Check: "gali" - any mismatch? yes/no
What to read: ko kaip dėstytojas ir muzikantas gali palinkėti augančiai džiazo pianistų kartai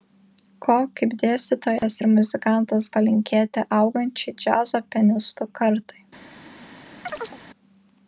yes